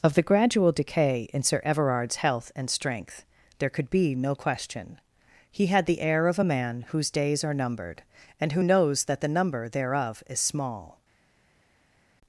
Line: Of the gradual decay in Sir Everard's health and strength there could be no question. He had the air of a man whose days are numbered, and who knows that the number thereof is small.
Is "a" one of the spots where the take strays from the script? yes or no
no